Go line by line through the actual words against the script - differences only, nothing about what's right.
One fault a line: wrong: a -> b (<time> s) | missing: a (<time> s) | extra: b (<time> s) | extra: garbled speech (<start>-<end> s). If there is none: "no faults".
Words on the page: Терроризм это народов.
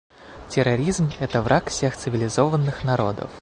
extra: враг всех цивилизованных (1.4 s)